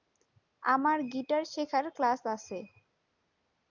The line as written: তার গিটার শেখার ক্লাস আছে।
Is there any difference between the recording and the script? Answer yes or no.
yes